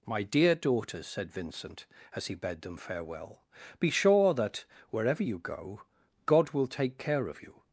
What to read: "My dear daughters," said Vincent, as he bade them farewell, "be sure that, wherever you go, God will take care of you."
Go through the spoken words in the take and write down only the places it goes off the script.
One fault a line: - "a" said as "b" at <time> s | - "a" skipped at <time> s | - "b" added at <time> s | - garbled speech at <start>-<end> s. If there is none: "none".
none